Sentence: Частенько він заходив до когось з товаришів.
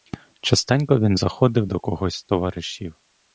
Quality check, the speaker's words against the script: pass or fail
pass